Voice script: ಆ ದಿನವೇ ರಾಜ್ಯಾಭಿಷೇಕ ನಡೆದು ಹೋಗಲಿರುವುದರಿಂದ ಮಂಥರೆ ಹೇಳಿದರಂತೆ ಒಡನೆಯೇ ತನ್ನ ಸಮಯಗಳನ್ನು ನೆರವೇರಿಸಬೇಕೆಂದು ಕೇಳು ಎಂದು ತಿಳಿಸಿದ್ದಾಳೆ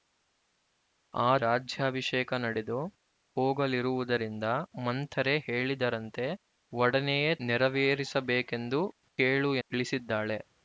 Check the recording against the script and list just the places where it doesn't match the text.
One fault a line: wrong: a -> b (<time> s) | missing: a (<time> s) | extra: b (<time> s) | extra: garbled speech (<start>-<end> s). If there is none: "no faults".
missing: ದಿನವೇ (1.3 s)
missing: ತನ್ನ ಸಮಯಗಳನ್ನು (7.3 s)
missing: ಎಂದು (9.5 s)